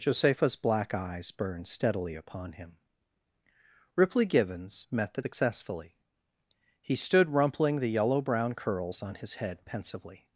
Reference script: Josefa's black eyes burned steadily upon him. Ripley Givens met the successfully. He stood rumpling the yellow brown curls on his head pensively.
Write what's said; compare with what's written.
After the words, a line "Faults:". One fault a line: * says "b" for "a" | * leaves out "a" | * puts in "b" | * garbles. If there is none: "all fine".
Josefa's black eyes burned steadily upon him. Ripley Givens met the successfully. He stood rumpling the yellow brown curls on his head pensively.
Faults:
all fine